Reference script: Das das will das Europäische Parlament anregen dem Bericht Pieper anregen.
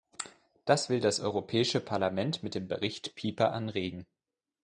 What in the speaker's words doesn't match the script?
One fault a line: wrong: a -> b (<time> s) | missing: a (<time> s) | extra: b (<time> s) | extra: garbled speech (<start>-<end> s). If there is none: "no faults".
missing: das (0.9 s)
wrong: anregen -> mit (2.4 s)